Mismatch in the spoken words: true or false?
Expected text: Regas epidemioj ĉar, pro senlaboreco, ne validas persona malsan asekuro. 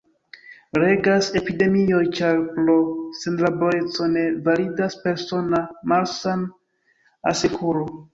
false